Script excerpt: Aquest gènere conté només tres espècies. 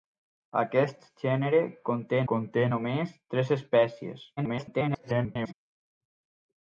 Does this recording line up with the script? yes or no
no